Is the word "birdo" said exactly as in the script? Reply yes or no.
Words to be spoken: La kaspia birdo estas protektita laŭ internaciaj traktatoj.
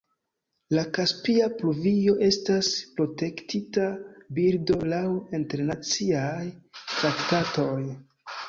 no